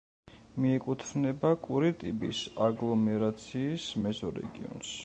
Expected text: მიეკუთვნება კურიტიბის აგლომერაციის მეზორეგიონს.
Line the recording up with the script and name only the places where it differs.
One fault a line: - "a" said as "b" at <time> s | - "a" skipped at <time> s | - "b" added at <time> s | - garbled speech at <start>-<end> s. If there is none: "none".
none